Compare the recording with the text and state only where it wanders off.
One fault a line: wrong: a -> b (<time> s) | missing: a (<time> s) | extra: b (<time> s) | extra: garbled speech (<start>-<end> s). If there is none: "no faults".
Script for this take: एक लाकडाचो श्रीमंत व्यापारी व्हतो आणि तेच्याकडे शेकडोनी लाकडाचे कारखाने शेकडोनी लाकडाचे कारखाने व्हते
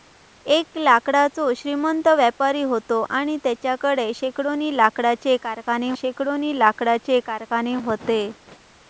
no faults